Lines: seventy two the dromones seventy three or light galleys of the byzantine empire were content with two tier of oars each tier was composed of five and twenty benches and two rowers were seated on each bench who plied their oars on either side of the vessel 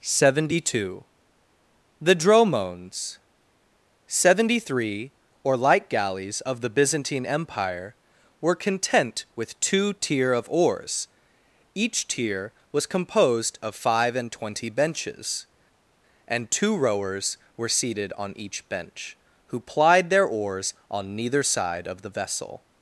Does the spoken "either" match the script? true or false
false